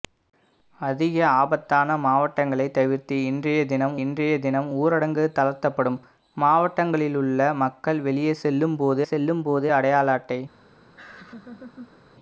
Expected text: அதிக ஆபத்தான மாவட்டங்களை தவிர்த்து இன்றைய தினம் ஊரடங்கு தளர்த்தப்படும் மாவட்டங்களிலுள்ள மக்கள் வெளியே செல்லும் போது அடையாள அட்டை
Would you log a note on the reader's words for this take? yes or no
yes